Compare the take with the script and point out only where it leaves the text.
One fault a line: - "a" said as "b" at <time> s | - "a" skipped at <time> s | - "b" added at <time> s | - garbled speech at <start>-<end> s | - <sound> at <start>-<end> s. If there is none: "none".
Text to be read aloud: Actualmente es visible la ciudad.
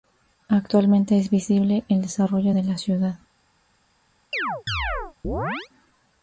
- "el desarrollo de" added at 1.9 s
- chirp at 4.3-5.7 s